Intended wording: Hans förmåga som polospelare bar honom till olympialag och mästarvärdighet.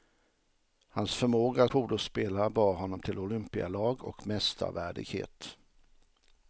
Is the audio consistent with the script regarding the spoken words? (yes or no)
no